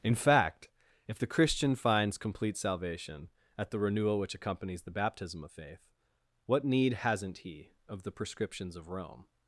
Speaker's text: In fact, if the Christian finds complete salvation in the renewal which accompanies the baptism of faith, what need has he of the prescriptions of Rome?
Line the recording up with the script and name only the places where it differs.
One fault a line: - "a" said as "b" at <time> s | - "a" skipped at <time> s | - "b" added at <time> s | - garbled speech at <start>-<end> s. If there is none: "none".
- "in" said as "at" at 3.6 s
- "has" said as "hasn't" at 6.9 s